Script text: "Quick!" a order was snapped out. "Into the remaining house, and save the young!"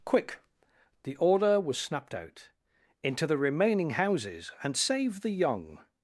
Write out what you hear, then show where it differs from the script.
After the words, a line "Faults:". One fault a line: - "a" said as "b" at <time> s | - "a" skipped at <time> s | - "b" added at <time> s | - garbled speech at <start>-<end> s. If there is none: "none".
"Quick!" the order was snapped out. "Into the remaining houses, and save the young!"
Faults:
- "a" said as "the" at 1.0 s
- "house" said as "houses" at 3.9 s